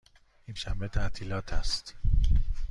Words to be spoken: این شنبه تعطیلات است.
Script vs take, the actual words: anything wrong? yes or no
no